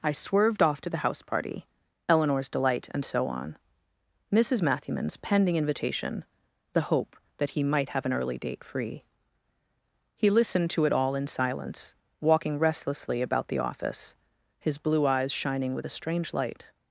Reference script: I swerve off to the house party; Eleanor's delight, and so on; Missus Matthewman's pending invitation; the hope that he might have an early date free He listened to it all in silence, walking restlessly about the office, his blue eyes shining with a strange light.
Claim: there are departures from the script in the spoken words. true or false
true